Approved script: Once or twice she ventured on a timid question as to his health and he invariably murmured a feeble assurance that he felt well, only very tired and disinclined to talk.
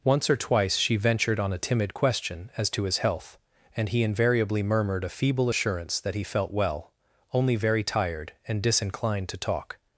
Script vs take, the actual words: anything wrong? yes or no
no